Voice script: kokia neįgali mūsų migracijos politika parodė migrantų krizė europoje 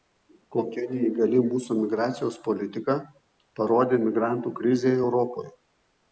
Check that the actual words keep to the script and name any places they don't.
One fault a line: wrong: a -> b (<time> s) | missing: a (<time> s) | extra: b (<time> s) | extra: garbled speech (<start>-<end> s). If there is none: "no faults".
no faults